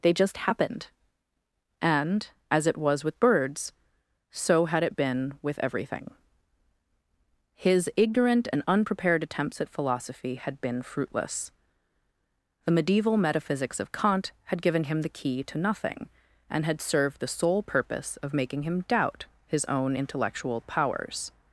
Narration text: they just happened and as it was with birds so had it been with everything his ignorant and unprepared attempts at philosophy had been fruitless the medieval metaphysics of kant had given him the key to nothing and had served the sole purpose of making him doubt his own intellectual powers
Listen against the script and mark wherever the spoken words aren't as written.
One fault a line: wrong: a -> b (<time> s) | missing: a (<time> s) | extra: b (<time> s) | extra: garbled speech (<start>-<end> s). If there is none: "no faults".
no faults